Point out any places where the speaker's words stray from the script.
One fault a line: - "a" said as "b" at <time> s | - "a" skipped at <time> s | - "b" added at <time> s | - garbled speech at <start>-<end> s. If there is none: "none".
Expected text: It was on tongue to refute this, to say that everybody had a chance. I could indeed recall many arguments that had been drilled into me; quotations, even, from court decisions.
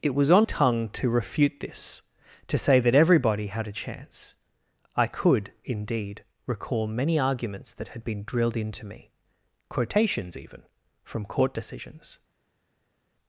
none